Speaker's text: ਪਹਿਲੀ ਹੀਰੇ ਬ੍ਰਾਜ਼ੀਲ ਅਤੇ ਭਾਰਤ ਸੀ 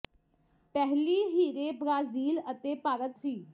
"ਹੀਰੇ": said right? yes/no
yes